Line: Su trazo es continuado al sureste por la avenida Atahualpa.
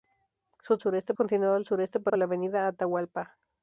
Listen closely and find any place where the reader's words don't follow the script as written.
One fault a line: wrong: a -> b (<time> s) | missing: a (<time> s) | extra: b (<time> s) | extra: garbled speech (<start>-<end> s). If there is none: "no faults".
wrong: trazo -> sureste (0.8 s)
extra: por (2.0 s)